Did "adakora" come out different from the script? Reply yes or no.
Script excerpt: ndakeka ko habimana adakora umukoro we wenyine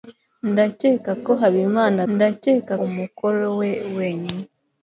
yes